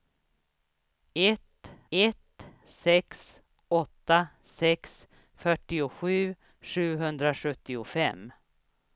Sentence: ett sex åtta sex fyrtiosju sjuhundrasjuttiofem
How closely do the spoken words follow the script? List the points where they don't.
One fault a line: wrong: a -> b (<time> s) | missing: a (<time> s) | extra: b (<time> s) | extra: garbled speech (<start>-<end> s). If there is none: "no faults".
extra: ett (1.9 s)